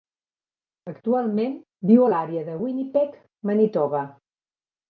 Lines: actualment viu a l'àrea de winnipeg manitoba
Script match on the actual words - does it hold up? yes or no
yes